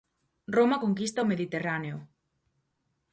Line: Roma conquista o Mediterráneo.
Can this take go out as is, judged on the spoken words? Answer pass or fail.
pass